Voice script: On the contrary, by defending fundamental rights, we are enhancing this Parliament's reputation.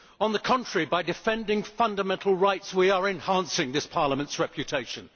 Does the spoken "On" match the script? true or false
true